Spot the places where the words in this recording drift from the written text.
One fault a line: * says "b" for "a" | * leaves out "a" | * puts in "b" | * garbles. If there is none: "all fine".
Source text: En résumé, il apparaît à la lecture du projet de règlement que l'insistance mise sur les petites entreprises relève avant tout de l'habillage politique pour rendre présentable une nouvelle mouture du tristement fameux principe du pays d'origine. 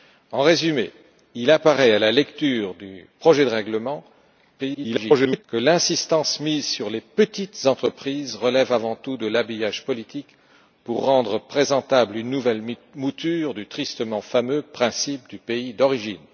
* garbles